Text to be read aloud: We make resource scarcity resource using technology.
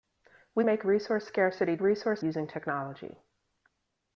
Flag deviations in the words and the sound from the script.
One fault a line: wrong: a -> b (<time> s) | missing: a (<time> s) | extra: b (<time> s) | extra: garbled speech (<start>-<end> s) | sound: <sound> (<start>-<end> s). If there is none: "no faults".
no faults